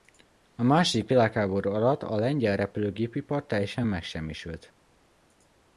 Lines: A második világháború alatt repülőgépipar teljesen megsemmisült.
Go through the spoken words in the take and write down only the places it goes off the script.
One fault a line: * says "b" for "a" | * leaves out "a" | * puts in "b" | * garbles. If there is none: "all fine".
* puts in "a lengyel"